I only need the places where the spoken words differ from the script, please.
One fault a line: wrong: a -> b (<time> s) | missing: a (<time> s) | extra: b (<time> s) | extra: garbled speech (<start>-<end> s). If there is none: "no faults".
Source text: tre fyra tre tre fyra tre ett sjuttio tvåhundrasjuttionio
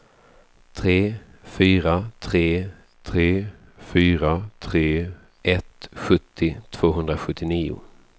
no faults